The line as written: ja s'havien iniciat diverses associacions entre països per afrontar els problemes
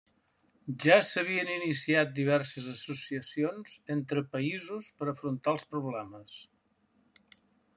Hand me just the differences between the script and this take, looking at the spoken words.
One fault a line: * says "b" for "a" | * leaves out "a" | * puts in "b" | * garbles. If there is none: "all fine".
all fine